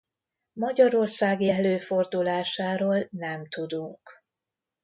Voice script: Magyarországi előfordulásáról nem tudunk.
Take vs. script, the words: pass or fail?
pass